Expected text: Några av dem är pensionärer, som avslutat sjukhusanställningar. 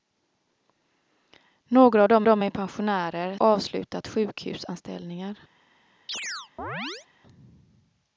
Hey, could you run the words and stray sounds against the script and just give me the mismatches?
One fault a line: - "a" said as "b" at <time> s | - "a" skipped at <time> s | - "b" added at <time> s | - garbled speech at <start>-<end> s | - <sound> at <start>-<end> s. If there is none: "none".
- "dem" added at 2.2 s
- "som" skipped at 3.4 s
- chirp at 6.1-7.1 s